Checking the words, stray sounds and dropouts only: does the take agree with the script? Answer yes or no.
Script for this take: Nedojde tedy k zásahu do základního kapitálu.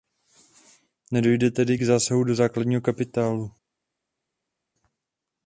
yes